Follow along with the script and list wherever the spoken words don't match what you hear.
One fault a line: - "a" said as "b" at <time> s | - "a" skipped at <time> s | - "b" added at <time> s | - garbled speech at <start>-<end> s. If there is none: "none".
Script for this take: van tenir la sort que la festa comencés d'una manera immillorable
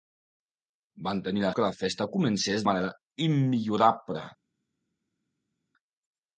- "sort" skipped at 1.5 s
- "d'una" skipped at 2.6 s